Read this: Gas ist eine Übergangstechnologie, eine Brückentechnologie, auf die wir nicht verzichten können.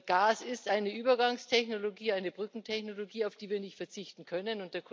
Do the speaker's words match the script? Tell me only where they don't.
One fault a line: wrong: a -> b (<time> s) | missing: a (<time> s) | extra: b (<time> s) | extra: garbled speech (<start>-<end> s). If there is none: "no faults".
no faults